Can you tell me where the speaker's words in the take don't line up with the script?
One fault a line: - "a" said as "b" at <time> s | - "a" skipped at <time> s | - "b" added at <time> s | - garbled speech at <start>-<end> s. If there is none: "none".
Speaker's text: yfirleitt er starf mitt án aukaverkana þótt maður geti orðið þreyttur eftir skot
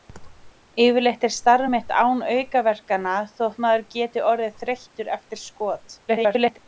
- garbled speech at 6.1-6.6 s